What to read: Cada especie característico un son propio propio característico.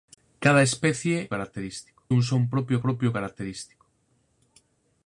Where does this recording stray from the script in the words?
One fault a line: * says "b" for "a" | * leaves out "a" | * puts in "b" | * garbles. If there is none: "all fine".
all fine